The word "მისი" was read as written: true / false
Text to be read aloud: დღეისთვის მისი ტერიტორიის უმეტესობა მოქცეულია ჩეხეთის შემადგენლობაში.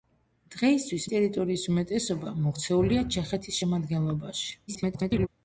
false